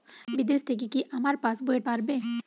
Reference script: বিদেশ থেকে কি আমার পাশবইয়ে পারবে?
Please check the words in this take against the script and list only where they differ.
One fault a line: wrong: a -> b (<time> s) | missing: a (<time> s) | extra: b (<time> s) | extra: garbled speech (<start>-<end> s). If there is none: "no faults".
no faults